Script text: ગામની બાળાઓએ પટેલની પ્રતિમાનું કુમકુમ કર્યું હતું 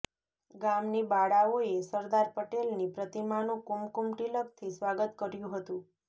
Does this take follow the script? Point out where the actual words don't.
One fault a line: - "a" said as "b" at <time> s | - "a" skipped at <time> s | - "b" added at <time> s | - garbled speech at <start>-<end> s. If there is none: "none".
- "સરદાર" added at 1.9 s
- "તિલકથી સ્વાગત" added at 4.2 s